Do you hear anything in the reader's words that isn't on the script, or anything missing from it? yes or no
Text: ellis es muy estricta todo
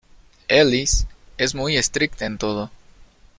yes